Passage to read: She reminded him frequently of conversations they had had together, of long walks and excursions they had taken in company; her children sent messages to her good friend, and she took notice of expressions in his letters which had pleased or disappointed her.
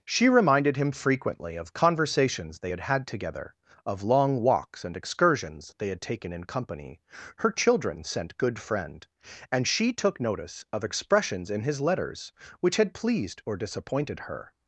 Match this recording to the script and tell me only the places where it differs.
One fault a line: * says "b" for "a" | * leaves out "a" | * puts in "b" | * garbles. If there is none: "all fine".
* leaves out "messages to her"